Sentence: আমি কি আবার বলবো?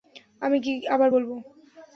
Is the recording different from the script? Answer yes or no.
no